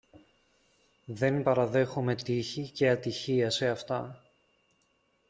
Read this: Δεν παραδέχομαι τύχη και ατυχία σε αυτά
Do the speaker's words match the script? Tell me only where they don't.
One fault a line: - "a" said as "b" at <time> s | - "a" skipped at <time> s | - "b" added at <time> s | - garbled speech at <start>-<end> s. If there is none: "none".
none